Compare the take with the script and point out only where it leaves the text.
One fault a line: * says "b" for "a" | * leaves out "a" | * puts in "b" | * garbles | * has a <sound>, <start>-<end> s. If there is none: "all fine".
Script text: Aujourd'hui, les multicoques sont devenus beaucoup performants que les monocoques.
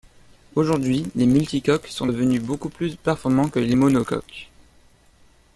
* puts in "plus"